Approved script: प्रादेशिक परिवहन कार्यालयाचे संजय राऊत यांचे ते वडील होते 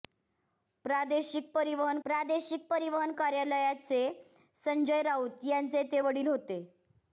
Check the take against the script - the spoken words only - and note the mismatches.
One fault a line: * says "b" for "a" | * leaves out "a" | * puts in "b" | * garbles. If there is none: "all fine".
* puts in "प्रादेशिक परिवहन"